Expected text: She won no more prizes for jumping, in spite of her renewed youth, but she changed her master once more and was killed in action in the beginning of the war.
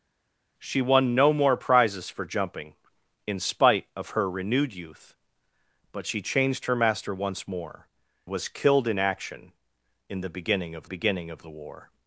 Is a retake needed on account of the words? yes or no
yes